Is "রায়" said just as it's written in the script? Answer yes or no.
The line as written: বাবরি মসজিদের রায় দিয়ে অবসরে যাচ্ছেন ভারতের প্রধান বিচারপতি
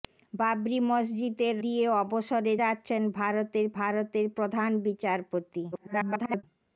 no